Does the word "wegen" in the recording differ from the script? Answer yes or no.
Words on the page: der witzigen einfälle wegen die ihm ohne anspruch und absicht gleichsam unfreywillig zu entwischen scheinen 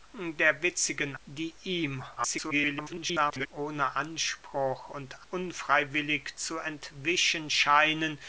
yes